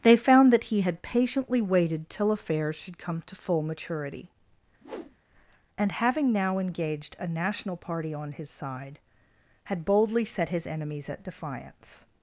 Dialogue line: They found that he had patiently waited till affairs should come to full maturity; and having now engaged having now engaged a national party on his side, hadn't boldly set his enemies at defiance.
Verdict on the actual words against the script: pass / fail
fail